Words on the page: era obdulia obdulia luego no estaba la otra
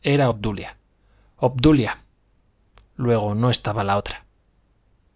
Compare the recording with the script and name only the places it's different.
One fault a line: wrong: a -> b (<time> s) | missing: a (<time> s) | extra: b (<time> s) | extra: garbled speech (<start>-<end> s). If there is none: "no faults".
no faults